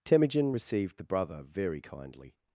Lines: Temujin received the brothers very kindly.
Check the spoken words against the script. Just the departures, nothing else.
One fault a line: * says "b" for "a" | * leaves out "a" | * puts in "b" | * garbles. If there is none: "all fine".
* says "brother" for "brothers"